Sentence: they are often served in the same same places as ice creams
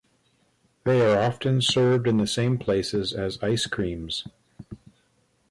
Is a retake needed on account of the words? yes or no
yes